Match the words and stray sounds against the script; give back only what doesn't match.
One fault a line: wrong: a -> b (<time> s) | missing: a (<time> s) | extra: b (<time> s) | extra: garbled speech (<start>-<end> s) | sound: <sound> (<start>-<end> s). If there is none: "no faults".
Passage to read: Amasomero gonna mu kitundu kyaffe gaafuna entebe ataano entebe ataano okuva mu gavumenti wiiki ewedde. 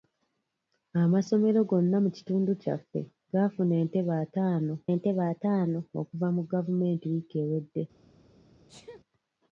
sound: sneeze (8.7-9.0 s)